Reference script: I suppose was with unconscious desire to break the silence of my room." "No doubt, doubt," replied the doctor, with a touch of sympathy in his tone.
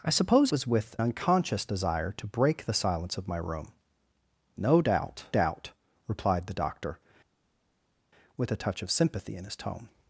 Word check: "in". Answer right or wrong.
right